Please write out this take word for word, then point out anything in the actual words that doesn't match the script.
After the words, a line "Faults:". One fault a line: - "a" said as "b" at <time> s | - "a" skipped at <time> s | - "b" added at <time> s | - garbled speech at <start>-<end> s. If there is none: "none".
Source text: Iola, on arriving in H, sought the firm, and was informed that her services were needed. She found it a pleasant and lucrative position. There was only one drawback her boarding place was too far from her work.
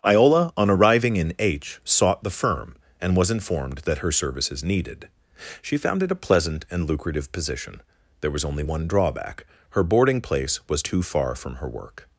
Iola, on arriving in H, sought the firm, and was informed that her services needed. She found it a pleasant and lucrative position. There was only one drawback her boarding place was too far from her work.
Faults:
- "were" skipped at 4.6 s